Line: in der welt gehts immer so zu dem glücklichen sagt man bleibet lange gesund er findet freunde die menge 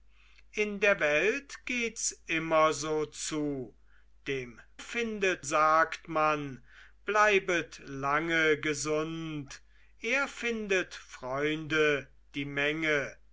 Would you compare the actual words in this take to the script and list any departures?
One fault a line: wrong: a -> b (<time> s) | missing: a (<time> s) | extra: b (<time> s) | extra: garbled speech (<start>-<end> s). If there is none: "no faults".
wrong: glücklichen -> findet (4.8 s)